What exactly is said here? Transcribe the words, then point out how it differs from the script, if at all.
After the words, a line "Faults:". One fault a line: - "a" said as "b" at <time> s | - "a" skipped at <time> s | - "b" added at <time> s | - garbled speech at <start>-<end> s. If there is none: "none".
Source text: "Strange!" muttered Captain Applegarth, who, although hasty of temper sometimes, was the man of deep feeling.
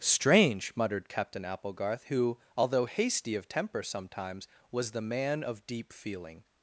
"Strange!" muttered Captain Applegarth, who, although hasty of temper sometimes, was the man of deep feeling.
Faults:
none